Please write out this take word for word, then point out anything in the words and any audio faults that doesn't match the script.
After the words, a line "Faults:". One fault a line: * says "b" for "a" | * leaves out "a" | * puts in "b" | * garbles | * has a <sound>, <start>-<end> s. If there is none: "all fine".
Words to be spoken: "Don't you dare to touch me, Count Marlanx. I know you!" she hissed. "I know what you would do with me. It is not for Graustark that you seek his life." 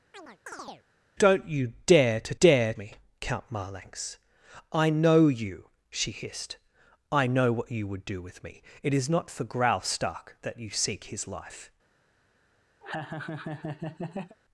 "Don't you dare to dare me, Count Marlanx. I know you!" she hissed. "I know what you would do with me. It is not for Graustark that you seek his life."
Faults:
* has a chirp, 0.1-0.8 s
* says "dare" for "touch"
* has a laugh, 12.8-14.4 s